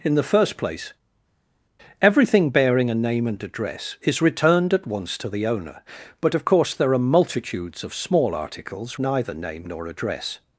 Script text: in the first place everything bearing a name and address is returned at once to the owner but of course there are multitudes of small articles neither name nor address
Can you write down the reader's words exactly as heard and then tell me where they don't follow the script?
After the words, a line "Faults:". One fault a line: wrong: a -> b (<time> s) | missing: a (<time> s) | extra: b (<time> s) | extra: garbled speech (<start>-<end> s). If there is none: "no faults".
in the first place everything bearing a name and address is returned at once to the owner but of course there are multitudes of small articles neither name nor address
Faults:
no faults